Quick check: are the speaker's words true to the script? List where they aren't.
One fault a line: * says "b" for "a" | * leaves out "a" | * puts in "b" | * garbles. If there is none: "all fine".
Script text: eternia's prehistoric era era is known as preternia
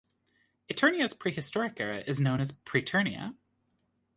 * leaves out "era"